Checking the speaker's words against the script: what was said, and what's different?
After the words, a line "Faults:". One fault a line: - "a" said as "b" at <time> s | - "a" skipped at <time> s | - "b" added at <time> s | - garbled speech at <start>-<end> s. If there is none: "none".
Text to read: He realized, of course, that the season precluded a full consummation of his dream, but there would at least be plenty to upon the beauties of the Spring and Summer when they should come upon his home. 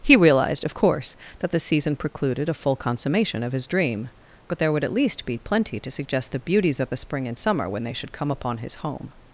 He realized, of course, that the season precluded a full consummation of his dream, but there would at least be plenty to suggest the beauties of the Spring and Summer when they should come upon his home.
Faults:
- "upon" said as "suggest" at 5.9 s